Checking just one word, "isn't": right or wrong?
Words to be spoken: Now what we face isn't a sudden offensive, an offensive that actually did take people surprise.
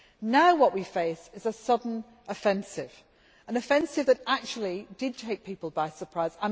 wrong